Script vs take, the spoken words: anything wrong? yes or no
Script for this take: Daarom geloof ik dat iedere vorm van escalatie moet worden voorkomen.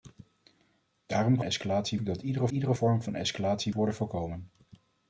yes